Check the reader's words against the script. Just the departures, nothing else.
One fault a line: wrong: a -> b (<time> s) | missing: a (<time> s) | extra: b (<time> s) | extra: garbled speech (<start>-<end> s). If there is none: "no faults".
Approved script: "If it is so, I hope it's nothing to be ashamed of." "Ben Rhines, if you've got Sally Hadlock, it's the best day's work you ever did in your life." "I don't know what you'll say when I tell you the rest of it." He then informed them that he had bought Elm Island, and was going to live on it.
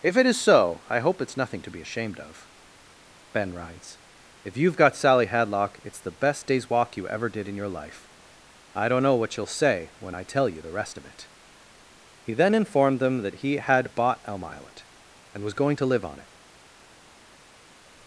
wrong: work -> walk (6.7 s)